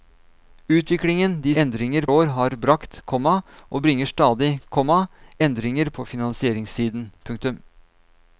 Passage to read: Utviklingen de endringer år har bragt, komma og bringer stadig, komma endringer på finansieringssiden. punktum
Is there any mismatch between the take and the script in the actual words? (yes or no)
no